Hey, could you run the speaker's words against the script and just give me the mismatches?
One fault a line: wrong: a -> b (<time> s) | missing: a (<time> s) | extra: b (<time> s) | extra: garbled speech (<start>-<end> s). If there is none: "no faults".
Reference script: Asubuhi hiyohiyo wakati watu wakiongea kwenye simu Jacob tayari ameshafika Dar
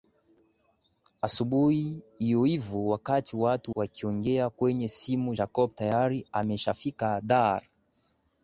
no faults